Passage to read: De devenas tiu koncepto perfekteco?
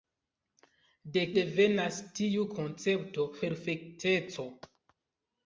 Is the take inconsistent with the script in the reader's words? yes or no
no